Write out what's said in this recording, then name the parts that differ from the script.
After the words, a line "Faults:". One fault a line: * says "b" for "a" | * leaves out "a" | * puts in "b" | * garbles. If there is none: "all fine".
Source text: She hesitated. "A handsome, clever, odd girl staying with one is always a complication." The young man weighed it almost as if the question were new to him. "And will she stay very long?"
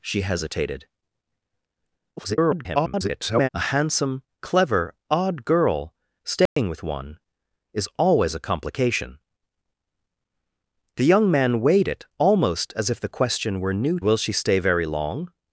She hesitated. [garbled] "A handsome, clever, odd girl staying with one is always a complication." The young man weighed it almost as if the question were new will she stay very long?"
Faults:
* garbles
* leaves out "to him And"